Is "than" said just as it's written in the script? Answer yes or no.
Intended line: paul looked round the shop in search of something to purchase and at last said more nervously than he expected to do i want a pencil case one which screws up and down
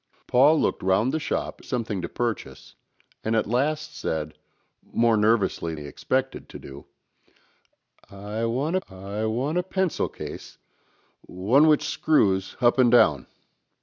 no